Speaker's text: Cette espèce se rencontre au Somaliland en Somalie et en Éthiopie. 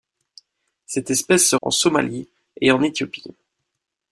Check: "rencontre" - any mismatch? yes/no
yes